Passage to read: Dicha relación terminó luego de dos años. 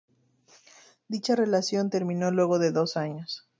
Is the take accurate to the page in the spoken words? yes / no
yes